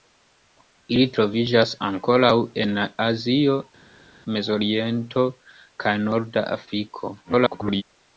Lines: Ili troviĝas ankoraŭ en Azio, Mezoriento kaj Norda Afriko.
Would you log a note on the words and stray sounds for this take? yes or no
yes